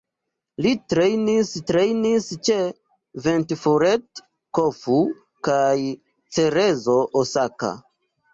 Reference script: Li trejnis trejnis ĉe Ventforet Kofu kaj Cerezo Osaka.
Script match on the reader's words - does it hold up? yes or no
yes